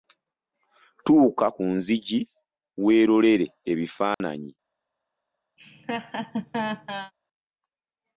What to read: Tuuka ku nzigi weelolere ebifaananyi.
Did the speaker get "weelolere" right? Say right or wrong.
right